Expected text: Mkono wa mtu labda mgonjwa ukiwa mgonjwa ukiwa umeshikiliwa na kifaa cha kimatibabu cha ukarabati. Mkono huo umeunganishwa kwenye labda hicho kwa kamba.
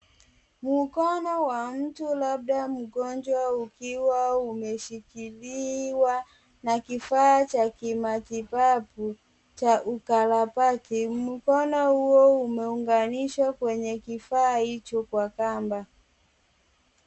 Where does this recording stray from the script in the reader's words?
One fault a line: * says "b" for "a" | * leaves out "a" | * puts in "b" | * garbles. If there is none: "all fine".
* leaves out "mgonjwa ukiwa"
* says "kifaa" for "labda"